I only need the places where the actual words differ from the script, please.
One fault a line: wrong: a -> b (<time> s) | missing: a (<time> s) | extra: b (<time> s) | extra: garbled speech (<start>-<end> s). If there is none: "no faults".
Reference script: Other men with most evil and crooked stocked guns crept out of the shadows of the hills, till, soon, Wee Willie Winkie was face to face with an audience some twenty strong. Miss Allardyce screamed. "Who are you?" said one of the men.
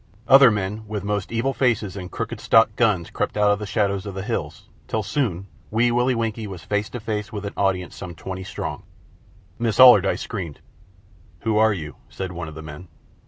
extra: faces (1.5 s)